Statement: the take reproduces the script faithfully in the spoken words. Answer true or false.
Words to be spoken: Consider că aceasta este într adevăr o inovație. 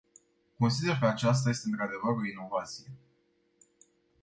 true